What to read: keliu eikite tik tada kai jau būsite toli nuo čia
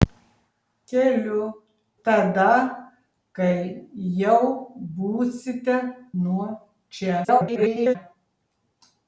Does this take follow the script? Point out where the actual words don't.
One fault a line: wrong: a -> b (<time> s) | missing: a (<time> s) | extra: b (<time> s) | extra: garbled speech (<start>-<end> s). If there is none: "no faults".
missing: eikite tik (1.4 s)
missing: toli (5.8 s)
extra: garbled speech (7.2-8.0 s)